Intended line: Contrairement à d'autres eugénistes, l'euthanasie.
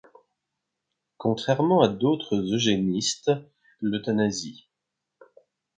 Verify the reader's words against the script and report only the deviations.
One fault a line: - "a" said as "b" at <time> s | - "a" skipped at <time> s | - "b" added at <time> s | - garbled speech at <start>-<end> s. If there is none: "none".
none